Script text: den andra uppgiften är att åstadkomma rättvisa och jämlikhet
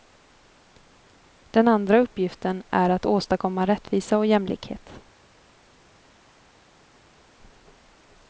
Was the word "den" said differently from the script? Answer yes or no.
no